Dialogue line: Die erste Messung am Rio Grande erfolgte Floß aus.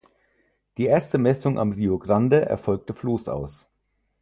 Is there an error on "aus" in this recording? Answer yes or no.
no